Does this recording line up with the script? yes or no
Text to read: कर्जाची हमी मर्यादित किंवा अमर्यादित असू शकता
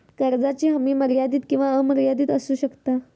yes